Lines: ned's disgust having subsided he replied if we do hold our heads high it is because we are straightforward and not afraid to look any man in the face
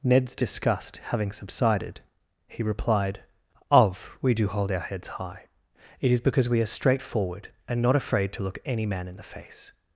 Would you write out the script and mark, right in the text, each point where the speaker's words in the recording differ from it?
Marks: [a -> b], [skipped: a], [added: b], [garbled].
ned's disgust having subsided he replied [if -> of] we do hold our heads high it is because we are straightforward and not afraid to look any man in the face